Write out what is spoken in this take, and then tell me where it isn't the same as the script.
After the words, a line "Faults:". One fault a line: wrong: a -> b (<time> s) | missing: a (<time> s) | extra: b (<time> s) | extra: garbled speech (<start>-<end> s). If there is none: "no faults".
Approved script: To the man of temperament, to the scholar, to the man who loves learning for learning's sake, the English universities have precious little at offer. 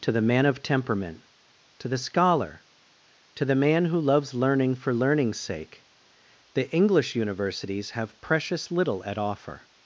To the man of temperament, to the scholar, to the man who loves learning for learning's sake, the English universities have precious little at offer.
Faults:
no faults